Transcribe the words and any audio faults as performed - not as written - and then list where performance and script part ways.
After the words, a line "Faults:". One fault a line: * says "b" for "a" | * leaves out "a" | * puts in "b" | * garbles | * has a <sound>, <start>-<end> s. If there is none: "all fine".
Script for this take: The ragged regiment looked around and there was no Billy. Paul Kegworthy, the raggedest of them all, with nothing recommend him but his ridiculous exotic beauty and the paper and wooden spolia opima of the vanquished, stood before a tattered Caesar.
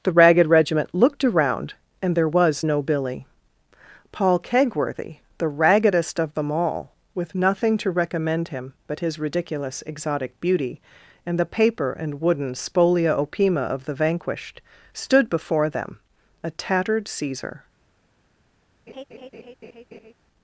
The ragged regiment looked around and there was no Billy. Paul Kegworthy, the raggedest of them all, with nothing to recommend him but his ridiculous exotic beauty and the paper and wooden spolia opima of the vanquished, stood before them, a tattered Caesar.
Faults:
* puts in "to"
* puts in "them"
* has a laugh, 18.9-20.1 s